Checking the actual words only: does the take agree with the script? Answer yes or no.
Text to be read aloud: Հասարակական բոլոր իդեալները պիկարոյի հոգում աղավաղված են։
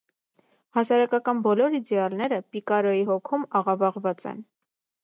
yes